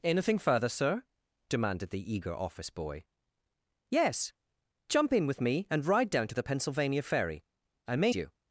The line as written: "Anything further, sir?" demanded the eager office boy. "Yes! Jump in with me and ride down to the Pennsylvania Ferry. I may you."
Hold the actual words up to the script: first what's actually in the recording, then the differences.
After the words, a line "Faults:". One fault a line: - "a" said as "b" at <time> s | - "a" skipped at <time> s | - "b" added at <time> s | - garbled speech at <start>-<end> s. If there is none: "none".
"Anything further, sir?" demanded the eager office boy. "Yes! Jump in with me and ride down to the Pennsylvania Ferry. I may you."
Faults:
none